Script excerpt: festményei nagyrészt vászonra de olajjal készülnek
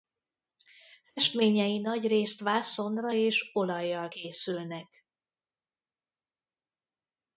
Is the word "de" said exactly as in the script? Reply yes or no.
no